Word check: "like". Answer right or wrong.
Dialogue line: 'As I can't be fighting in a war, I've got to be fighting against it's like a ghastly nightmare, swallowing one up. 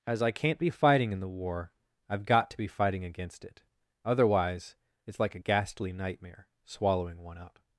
right